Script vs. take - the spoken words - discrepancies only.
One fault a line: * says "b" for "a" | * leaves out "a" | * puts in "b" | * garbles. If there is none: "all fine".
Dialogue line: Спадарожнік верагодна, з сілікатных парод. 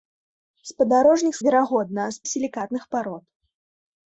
all fine